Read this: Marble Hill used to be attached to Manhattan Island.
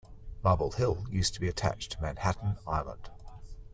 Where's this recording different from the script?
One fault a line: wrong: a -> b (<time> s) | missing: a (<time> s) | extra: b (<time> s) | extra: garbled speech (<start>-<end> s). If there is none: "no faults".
no faults